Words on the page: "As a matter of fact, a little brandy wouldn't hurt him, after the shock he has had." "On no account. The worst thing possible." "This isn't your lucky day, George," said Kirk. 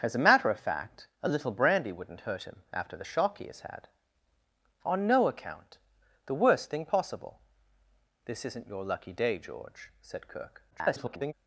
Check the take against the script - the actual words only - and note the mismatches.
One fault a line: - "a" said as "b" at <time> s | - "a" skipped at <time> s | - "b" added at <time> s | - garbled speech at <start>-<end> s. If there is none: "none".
- garbled speech at 10.7-11.3 s